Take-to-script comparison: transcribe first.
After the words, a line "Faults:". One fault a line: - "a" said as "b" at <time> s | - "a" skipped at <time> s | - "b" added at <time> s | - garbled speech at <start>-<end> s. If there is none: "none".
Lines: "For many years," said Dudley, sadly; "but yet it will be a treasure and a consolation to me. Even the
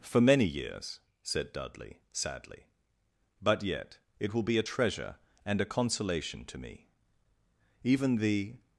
"For many years," said Dudley, sadly; "but yet it will be a treasure and a consolation to me. Even the
Faults:
none